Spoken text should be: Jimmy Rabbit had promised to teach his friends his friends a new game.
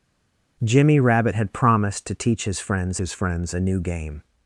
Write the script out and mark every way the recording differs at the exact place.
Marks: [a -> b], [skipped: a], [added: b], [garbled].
Jimmy Rabbit had promised to teach his friends his friends a new game.